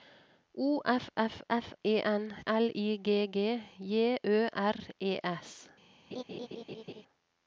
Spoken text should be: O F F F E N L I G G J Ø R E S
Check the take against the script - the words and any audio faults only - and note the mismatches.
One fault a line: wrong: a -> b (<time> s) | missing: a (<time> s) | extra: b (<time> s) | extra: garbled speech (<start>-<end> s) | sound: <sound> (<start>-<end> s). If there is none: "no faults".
sound: laugh (6.1-7.0 s)